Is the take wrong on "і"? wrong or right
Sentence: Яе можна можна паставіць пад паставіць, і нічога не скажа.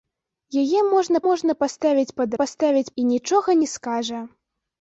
right